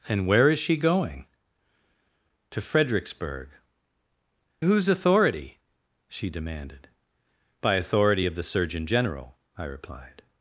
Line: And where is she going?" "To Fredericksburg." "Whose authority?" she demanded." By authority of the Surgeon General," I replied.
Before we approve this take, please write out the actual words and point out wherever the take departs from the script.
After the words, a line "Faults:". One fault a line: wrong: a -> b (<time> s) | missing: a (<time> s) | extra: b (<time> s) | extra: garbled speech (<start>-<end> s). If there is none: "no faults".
And where is she going?" "To Fredericksburg." "Whose authority?" she demanded." By authority of the Surgeon General," I replied.
Faults:
no faults